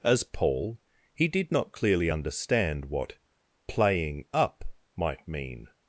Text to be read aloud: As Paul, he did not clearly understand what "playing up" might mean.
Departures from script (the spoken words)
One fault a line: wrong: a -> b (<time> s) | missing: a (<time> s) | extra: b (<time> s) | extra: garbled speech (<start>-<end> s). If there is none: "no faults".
no faults